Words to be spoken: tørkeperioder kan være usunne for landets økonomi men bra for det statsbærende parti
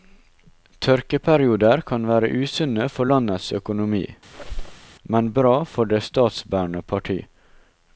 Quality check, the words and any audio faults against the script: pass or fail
fail